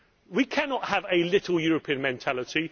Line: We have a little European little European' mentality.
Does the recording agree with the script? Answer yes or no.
no